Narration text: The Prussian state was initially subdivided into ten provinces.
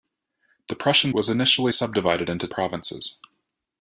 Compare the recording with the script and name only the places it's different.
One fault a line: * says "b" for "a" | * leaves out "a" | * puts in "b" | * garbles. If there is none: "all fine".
* leaves out "state"
* leaves out "ten"